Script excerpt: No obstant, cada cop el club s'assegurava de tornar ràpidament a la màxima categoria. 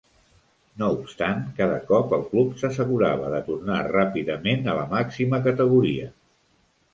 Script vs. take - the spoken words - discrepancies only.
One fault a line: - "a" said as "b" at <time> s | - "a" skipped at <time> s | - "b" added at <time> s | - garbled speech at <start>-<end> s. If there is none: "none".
none